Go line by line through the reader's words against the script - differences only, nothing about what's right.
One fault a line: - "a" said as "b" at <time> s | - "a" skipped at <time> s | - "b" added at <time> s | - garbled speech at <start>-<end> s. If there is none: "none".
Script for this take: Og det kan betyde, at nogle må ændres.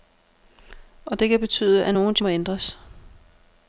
none